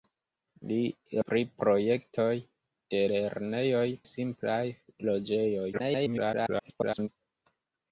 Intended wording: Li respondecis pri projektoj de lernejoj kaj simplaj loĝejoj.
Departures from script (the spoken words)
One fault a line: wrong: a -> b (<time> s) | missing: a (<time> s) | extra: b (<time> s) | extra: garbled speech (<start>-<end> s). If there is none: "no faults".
missing: respondecis (0.8 s)
missing: kaj (3.8 s)
extra: garbled speech (5.7-7.1 s)